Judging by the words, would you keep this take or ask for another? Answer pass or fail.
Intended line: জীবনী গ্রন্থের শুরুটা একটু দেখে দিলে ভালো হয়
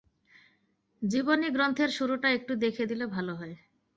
pass